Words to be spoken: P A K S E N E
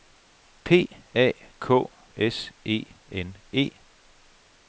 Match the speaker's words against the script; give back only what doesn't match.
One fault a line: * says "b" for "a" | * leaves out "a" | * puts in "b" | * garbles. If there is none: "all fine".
all fine